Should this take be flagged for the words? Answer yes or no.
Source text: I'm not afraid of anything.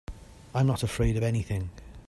no